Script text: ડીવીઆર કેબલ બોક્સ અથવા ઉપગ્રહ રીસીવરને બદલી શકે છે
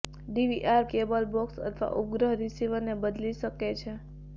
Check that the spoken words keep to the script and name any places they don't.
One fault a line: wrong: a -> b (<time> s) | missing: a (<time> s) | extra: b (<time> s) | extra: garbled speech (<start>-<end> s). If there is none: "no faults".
no faults